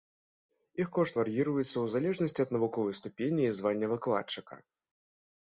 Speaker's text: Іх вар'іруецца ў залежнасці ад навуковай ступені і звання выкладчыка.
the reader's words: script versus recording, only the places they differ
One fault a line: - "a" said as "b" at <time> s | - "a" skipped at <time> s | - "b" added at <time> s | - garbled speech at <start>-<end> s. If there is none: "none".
- "кошт" added at 1.0 s